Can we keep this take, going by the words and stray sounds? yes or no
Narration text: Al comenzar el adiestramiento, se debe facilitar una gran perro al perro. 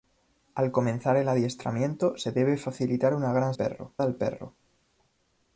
yes